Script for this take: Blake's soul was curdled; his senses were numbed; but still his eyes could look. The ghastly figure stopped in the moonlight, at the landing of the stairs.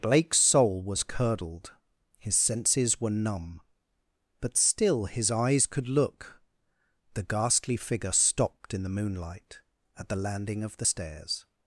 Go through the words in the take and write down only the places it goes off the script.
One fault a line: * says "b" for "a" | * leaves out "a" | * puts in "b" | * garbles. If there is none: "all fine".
* says "numb" for "numbed"